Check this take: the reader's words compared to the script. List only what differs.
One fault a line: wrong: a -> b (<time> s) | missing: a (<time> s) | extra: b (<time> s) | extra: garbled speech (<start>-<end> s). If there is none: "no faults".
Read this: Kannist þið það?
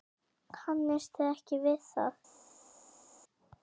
extra: ekki við (1.3 s)